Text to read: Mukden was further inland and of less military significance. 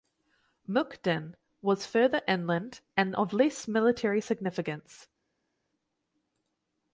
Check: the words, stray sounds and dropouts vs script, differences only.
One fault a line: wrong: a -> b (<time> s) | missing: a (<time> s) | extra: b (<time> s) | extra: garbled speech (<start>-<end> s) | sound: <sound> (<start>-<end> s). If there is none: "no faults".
no faults